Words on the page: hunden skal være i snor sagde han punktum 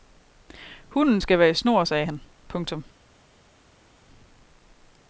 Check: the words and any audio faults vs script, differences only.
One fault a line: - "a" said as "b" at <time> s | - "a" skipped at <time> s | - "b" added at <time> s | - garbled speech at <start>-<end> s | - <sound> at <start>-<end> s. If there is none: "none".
none